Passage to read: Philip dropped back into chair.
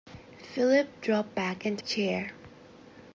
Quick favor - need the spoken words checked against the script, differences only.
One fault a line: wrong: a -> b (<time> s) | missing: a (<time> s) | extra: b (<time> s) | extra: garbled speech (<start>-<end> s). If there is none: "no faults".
no faults